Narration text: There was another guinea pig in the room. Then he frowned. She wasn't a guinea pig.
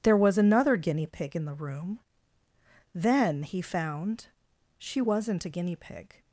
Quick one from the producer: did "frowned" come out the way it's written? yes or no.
no